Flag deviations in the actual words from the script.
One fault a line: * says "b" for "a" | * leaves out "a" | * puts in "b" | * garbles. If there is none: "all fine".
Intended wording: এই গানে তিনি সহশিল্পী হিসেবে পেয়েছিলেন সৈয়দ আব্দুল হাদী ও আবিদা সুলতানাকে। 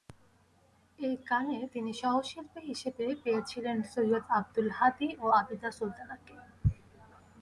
all fine